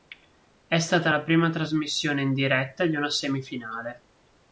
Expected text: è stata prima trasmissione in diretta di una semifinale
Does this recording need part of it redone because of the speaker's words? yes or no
yes